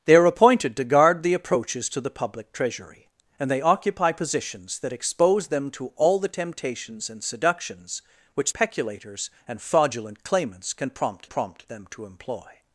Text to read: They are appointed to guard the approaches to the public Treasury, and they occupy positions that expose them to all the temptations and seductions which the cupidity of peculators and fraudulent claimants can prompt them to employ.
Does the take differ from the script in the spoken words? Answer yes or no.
yes